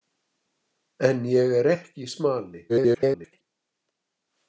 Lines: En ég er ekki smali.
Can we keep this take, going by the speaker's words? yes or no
no